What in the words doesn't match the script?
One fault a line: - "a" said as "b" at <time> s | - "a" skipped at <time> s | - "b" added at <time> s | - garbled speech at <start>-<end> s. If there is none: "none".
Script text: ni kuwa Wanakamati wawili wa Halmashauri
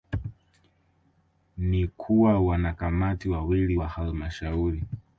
none